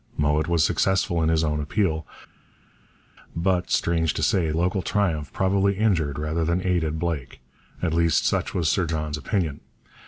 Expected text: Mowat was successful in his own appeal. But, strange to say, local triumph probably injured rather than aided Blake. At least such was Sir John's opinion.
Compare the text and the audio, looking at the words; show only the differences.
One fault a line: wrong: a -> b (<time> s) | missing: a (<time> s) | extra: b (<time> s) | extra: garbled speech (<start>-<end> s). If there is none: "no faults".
no faults